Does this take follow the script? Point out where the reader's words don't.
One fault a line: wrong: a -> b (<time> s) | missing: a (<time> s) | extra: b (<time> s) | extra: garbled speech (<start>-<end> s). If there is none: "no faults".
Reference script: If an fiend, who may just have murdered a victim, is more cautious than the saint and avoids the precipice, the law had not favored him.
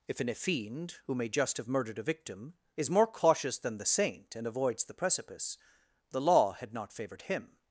no faults